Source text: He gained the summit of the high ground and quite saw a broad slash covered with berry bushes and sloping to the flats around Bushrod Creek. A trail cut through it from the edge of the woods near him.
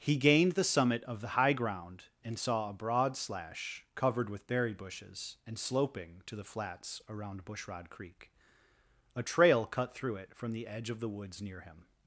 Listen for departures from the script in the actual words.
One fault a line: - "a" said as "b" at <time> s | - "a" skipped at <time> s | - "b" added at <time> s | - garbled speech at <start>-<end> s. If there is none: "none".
- "quite" skipped at 2.4 s